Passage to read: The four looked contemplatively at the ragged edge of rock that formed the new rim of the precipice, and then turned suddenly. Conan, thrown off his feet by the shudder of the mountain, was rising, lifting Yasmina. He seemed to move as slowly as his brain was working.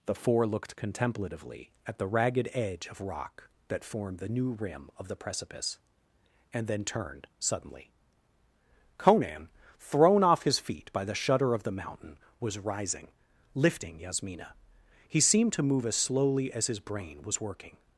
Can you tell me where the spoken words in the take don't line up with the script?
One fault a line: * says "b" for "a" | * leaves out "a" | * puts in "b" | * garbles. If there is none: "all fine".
all fine